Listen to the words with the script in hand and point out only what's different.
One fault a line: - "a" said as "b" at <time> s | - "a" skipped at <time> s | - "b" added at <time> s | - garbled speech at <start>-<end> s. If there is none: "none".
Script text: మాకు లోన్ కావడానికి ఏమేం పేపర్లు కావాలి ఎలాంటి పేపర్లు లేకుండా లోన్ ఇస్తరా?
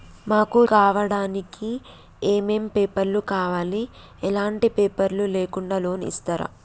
- "లోన్" skipped at 0.6 s